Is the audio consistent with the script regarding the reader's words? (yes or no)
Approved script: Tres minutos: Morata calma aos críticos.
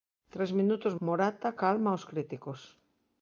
yes